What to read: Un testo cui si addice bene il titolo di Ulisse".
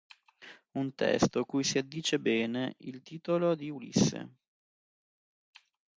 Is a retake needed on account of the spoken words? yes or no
no